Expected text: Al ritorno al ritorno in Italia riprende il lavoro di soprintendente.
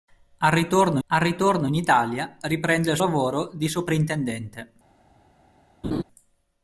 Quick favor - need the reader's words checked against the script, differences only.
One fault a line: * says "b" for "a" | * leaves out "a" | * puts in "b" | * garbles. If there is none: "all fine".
all fine